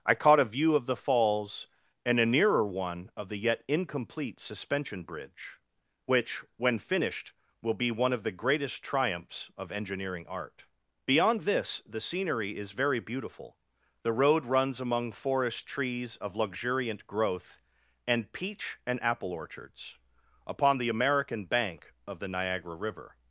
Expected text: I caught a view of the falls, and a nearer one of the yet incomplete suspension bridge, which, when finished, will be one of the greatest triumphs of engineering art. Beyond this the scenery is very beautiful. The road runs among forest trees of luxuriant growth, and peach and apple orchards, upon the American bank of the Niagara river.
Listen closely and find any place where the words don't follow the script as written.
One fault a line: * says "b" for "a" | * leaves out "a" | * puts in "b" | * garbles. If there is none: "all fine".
all fine